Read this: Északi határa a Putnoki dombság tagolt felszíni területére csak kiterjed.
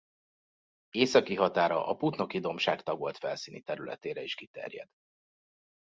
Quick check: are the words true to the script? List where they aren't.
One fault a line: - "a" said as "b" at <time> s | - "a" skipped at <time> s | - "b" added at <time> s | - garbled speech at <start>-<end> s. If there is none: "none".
- "csak" said as "is" at 4.2 s